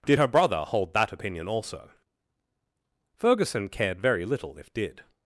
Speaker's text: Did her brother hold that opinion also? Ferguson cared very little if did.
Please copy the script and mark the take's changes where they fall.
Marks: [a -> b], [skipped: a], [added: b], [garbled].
Did her brother hold that opinion also? Ferguson cared very little if did.